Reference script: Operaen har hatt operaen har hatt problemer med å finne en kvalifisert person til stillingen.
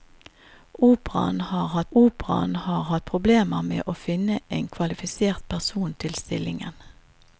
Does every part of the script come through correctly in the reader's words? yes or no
yes